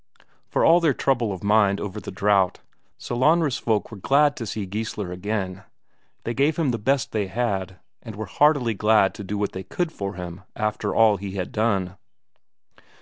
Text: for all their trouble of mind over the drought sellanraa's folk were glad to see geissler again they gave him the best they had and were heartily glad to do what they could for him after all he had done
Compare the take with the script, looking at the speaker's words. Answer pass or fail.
pass